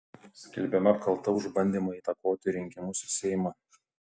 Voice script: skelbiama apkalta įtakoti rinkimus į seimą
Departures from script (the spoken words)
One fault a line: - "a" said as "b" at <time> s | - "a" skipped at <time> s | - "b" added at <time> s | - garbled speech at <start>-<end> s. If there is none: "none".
- "už bandymą" added at 1.4 s